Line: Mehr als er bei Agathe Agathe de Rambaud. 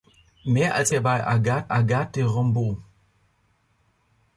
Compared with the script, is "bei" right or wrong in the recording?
right